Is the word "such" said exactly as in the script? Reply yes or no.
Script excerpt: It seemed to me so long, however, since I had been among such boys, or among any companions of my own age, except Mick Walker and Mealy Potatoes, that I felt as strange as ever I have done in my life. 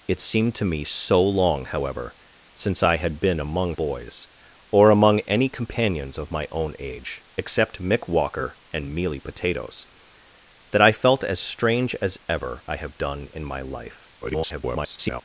no